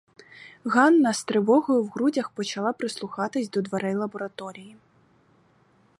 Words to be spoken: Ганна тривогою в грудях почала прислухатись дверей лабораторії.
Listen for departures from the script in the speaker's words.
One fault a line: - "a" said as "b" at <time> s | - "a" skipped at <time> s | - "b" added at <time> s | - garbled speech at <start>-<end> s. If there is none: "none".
- "з" added at 1.1 s
- "до" added at 3.5 s